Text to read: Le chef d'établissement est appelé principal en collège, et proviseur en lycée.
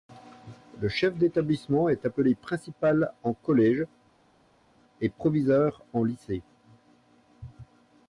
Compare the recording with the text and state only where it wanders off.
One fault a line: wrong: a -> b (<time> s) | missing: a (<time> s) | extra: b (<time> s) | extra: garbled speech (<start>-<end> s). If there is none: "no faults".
no faults